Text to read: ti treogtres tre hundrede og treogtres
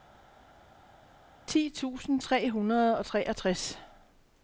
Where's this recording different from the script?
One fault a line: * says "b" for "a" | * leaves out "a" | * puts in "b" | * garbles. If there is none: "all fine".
* says "tusind" for "treogtres"